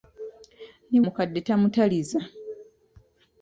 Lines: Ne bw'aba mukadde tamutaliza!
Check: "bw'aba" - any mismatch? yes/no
yes